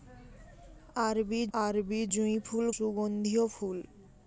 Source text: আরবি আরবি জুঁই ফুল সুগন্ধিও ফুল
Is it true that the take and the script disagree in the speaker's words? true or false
false